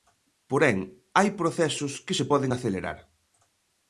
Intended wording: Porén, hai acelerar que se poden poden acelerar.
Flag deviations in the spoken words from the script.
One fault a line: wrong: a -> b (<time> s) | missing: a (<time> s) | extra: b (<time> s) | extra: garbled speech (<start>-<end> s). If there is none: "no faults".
wrong: acelerar -> procesos (1.4 s)
missing: poden (2.5 s)